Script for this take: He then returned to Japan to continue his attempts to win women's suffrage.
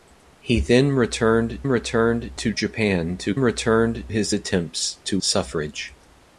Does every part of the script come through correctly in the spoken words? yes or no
no